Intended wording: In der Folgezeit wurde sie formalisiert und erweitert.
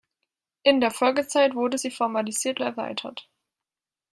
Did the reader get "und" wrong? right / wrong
wrong